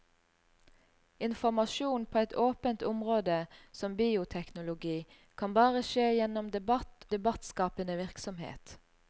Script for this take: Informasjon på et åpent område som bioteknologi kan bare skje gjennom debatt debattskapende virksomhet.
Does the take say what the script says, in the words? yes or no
yes